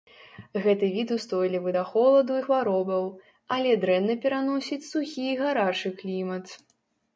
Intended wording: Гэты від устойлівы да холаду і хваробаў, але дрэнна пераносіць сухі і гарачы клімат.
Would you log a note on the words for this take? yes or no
no